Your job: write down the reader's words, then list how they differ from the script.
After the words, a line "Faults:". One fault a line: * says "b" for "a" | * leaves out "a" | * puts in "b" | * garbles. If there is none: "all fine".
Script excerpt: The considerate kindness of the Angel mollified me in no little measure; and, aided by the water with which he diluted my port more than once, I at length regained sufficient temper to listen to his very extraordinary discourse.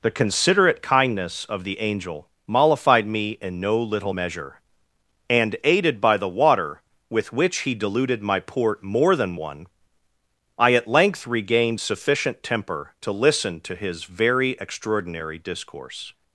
The considerate kindness of the Angel mollified me in no little measure; and, aided by the water with which he diluted my port more than one, I at length regained sufficient temper to listen to his very extraordinary discourse.
Faults:
* says "one" for "once"